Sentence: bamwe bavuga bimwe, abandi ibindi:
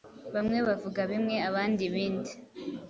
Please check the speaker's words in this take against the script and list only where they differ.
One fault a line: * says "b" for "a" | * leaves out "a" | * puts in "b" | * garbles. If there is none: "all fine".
all fine